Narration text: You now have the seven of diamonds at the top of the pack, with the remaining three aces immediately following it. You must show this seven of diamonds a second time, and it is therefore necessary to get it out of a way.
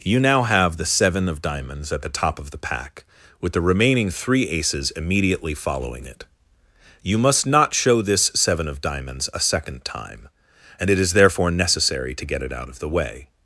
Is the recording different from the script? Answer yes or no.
yes